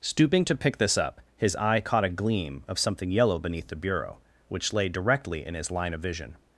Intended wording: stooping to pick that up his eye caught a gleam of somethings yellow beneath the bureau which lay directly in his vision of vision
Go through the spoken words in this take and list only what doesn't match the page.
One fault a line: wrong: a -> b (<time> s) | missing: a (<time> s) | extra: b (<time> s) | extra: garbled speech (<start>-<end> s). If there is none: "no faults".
wrong: that -> this (0.8 s)
wrong: somethings -> something (2.8 s)
wrong: vision -> line (5.7 s)